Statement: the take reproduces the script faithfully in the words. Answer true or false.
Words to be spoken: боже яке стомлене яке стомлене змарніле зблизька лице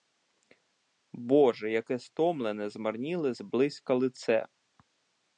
false